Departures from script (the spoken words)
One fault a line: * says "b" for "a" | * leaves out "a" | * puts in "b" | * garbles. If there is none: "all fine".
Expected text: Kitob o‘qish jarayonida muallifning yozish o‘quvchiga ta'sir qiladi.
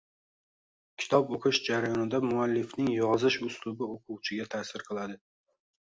* puts in "uslubi"